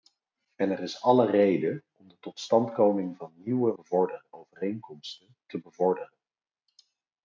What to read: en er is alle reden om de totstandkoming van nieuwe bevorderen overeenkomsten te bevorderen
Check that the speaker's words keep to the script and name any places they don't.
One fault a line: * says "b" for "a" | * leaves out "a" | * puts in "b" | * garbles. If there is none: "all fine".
all fine